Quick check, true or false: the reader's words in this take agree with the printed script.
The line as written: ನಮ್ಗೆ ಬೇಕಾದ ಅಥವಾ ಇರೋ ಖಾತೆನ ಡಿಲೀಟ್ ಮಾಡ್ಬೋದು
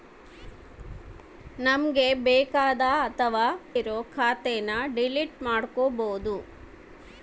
true